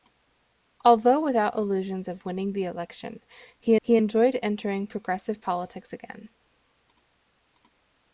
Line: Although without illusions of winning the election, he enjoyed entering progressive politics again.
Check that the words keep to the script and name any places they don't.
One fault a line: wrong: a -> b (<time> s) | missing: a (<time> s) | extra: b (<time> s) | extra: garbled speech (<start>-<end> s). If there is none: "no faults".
extra: he (3.8 s)